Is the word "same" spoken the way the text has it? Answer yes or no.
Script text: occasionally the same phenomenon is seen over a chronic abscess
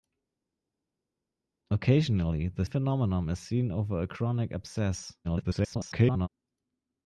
no